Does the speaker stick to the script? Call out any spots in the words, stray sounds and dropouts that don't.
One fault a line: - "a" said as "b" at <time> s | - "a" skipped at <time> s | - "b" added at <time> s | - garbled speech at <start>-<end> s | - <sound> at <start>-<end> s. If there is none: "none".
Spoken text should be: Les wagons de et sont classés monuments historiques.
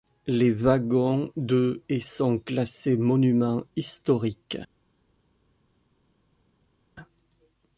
none